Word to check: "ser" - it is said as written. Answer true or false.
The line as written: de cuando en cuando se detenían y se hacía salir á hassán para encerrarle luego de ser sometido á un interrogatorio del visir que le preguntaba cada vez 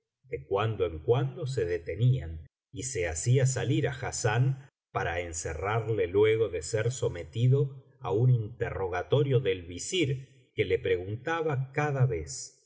true